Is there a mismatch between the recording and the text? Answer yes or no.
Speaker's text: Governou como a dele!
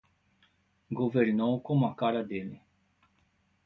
yes